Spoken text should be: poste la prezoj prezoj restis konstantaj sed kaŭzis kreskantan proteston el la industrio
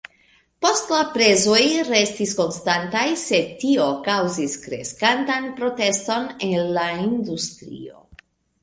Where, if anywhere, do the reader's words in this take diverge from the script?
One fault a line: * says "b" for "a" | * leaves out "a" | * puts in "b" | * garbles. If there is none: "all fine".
* leaves out "prezoj"
* puts in "tio"